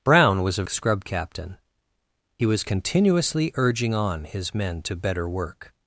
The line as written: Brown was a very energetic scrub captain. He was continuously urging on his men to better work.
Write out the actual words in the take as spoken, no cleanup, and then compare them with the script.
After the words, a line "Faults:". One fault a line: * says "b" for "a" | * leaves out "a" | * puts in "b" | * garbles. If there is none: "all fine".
Brown was a scrub captain. He was continuously urging on his men to better work.
Faults:
* leaves out "very energetic"